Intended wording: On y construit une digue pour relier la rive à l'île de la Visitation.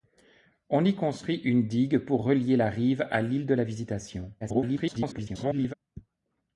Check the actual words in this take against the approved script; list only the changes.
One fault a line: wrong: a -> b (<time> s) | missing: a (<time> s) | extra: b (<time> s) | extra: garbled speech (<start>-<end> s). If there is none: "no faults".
extra: garbled speech (4.4-5.7 s)